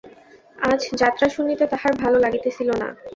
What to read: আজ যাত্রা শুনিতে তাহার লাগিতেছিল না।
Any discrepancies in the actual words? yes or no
yes